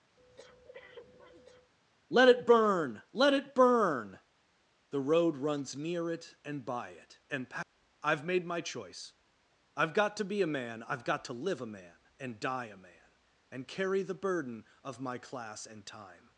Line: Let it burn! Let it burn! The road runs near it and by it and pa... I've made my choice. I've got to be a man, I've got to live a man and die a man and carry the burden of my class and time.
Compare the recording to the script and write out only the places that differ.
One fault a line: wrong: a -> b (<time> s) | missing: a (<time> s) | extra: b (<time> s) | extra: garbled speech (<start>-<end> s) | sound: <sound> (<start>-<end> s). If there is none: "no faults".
sound: breath (0.2-1.7 s)